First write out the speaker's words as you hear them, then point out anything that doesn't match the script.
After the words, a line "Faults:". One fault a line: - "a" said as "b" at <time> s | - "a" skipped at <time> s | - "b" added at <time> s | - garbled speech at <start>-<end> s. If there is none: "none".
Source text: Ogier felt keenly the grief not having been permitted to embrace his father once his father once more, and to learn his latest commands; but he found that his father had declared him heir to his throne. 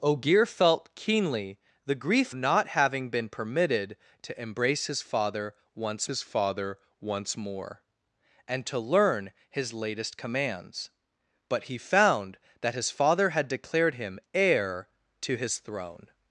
Ogier felt keenly the grief not having been permitted to embrace his father once his father once more, and to learn his latest commands; but he found that his father had declared him heir to his throne.
Faults:
none